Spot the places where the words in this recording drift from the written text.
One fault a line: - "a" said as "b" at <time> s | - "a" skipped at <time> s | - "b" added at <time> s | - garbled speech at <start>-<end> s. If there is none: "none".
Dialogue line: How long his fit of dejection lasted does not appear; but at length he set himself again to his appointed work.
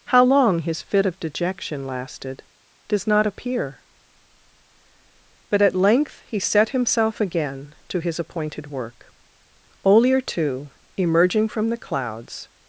- "Olier too emerging from the clouds" added at 9.9 s